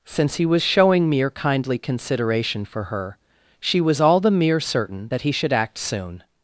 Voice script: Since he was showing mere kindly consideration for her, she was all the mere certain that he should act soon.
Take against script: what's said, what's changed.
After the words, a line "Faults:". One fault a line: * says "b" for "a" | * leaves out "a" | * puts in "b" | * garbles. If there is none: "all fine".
Since he was showing mere kindly consideration for her, she was all the mere certain that he should act soon.
Faults:
all fine